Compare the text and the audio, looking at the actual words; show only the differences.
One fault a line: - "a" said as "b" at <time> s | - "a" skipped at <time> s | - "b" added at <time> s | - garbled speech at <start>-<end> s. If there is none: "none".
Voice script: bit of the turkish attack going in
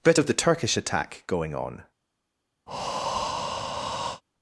- "in" said as "on" at 1.6 s